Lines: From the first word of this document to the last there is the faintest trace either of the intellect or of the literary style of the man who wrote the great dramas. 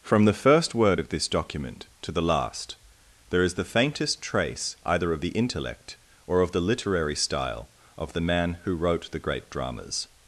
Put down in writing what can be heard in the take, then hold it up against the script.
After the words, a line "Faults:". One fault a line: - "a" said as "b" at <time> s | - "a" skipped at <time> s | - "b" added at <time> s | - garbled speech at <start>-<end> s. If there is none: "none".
From the first word of this document to the last there is the faintest trace either of the intellect or of the literary style of the man who wrote the great dramas.
Faults:
none